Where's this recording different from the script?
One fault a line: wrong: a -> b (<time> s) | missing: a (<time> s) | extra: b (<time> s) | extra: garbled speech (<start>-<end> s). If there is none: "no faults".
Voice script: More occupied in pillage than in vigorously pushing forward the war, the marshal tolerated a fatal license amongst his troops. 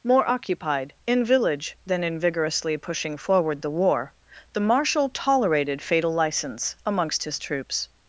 wrong: pillage -> village (1.3 s)
missing: a (5.8 s)